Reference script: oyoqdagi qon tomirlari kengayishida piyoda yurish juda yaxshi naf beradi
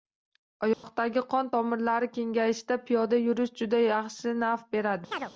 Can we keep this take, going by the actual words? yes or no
yes